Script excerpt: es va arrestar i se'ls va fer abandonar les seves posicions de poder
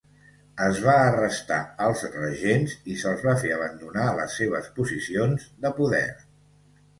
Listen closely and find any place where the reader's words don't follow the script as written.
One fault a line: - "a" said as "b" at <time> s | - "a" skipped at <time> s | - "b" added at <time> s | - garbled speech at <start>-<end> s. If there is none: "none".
- "als regents" added at 1.9 s